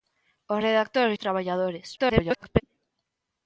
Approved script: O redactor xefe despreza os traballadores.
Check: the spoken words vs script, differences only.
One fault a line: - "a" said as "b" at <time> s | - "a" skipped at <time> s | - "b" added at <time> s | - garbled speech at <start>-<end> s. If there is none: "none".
- "xefe despreza" skipped at 1.1 s
- garbled speech at 2.0-2.6 s